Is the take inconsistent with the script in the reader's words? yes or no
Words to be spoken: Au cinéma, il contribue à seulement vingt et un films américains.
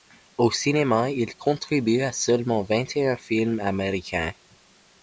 no